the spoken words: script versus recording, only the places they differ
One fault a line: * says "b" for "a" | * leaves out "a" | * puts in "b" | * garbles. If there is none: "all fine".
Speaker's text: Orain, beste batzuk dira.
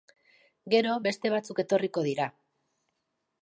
* says "Gero" for "Orain"
* puts in "etorriko"